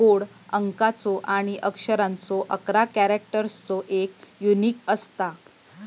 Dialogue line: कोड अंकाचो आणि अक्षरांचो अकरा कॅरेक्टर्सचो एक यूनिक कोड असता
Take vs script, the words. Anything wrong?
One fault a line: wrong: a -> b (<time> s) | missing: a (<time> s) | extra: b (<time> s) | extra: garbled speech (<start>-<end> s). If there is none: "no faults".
missing: कोड (4.8 s)